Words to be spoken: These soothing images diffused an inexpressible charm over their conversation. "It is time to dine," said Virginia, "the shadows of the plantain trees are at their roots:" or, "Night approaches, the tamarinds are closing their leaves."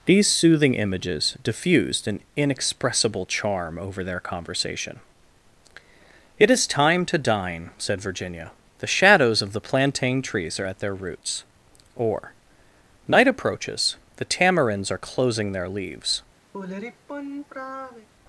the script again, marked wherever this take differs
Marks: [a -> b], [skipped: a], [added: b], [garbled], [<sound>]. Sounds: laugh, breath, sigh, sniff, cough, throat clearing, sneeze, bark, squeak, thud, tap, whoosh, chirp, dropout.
These soothing images diffused an inexpressible charm over their conversation. "It is time to dine," said Virginia, "the shadows of the plantain trees are at their roots:" or, "Night approaches, the tamarinds are closing their leaves." [sigh]